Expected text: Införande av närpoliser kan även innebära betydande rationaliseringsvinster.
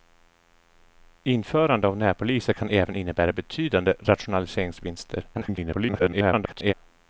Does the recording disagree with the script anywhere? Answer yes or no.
yes